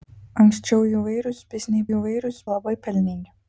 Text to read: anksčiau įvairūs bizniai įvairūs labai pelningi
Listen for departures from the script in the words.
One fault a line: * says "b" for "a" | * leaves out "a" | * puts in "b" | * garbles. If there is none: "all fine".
all fine